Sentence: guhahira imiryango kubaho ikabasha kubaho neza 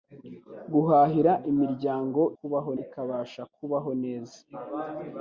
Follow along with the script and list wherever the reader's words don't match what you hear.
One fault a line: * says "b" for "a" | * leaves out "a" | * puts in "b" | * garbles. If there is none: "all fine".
all fine